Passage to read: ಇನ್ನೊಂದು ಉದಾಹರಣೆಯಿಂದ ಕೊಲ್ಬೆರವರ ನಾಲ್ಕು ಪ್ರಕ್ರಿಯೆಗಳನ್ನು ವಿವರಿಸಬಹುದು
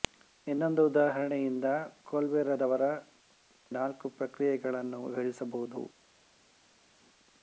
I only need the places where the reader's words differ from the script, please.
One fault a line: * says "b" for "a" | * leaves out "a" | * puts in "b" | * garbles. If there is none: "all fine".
all fine